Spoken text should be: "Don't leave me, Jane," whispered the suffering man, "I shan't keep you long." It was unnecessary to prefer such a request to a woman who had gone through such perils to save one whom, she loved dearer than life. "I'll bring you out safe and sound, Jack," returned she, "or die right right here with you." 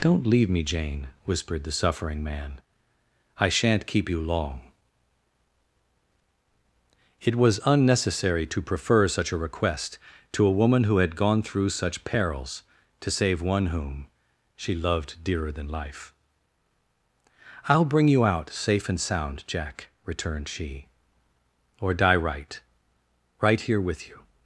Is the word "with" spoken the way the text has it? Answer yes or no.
yes